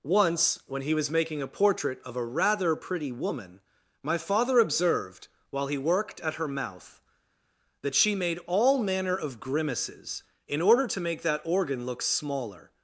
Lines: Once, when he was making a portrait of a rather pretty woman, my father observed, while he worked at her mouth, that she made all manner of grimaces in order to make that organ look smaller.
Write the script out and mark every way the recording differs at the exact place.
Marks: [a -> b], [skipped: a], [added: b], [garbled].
Once, when he was making a portrait of a rather pretty woman, my father observed, while he worked at her mouth, that she made all manner of grimaces in order to make that organ look smaller.